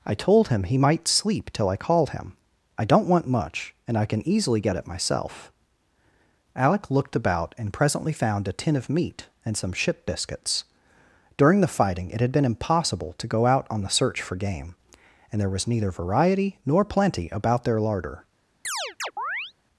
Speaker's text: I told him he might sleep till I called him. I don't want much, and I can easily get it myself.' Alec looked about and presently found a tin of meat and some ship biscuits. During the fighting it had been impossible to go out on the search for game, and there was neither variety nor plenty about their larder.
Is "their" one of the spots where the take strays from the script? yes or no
no